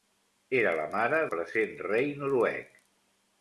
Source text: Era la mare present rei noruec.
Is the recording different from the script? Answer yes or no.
no